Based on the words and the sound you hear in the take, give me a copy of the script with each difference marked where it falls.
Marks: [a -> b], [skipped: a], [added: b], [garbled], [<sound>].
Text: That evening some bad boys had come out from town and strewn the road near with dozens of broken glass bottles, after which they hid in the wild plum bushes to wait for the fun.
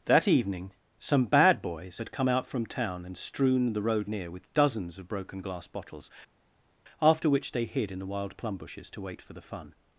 That evening some bad boys had come out from town and strewn the road near with dozens of broken glass bottles, after which they hid in the wild plum bushes to wait for the fun.